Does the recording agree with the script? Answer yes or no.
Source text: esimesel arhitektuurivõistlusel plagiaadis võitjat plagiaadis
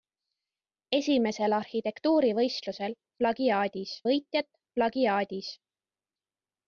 yes